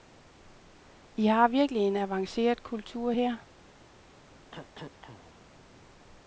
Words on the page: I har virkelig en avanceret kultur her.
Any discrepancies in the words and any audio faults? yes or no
yes